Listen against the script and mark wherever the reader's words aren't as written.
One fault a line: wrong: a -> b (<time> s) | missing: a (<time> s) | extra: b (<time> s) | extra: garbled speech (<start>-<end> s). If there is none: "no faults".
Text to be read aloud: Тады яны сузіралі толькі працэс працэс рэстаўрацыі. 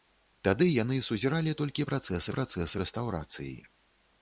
no faults